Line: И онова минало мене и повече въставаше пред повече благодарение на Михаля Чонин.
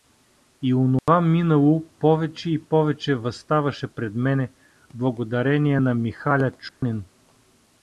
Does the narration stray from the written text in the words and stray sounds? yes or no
yes